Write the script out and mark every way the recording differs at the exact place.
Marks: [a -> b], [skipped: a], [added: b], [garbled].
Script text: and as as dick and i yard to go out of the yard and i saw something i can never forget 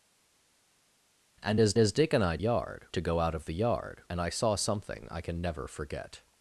and as as dick and i yard to go out of the yard and i saw something i can never forget